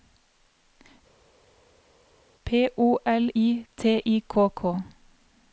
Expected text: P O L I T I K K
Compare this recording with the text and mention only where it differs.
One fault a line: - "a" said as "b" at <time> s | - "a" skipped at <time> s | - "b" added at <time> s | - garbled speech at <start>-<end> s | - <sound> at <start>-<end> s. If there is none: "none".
none